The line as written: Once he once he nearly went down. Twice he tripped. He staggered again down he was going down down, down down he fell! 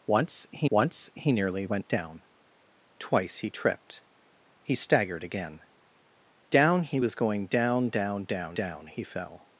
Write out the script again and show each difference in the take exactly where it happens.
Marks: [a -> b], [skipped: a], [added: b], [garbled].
Once he once he nearly went down. Twice he tripped. He staggered again down he was going down down, down down he fell!